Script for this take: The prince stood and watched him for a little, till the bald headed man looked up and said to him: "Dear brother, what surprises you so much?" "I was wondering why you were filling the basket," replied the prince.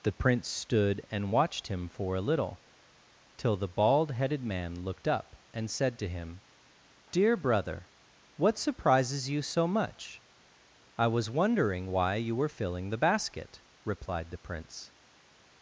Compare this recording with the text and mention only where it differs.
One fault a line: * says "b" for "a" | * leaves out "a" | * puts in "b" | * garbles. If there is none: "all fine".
all fine